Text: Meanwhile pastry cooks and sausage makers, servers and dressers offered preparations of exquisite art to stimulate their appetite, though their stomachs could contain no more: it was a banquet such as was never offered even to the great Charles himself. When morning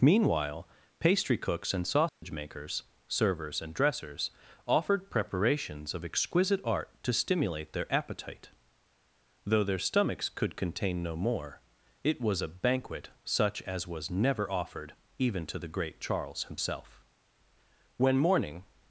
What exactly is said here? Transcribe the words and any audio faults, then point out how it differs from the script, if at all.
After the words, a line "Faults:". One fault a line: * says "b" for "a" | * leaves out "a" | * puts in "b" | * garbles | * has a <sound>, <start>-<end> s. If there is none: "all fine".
Meanwhile pastry cooks and sausage makers, servers and dressers offered preparations of exquisite art to stimulate their appetite, though their stomachs could contain no more: it was a banquet such as was never offered even to the great Charles himself. When morning
Faults:
* has a dropout, 2.1-2.2 s